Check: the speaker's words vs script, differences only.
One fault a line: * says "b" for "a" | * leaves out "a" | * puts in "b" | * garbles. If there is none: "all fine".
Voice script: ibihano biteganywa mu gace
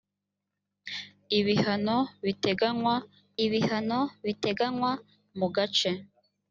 * puts in "ibihano biteganywa"